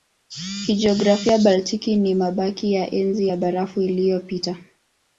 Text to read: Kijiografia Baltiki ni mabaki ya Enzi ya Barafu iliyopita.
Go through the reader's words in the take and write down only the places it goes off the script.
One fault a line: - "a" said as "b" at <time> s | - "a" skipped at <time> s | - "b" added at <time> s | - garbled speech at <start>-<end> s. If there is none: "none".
none